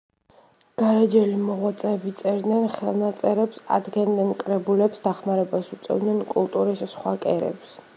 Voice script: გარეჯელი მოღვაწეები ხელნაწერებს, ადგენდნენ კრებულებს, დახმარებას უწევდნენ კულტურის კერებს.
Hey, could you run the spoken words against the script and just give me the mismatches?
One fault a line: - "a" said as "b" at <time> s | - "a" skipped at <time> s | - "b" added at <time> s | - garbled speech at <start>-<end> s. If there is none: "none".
- "წერდნენ" added at 2.2 s
- "სხვა" added at 7.0 s